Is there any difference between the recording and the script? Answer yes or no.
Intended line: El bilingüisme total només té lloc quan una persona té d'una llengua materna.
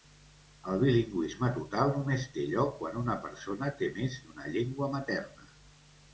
yes